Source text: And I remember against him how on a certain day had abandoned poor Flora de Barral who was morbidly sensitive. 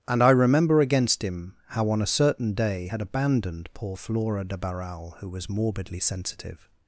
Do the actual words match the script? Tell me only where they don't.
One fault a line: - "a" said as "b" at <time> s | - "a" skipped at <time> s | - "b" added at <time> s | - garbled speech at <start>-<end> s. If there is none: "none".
none